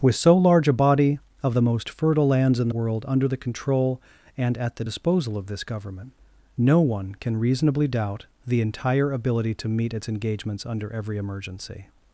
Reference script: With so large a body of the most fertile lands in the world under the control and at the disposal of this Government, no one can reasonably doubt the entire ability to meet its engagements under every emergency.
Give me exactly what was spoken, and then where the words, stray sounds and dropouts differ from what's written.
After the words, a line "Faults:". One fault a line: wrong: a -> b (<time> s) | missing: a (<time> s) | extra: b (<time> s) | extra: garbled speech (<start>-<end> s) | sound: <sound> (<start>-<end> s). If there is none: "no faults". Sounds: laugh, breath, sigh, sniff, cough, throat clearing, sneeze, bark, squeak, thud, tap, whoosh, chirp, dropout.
With so large a body of the most fertile lands in world under the control and at the disposal of this Government, no one can reasonably doubt the entire ability to meet its engagements under every emergency.
Faults:
missing: the (2.7 s)